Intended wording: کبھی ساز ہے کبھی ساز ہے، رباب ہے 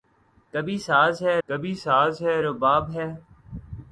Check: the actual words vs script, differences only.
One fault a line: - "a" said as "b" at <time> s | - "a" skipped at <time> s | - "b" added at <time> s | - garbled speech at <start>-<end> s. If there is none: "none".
none